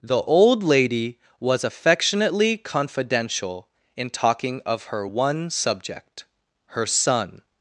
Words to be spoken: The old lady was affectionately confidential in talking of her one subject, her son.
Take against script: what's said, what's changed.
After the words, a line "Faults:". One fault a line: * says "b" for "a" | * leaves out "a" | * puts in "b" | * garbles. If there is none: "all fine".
The old lady was affectionately confidential in talking of her one subject, her son.
Faults:
all fine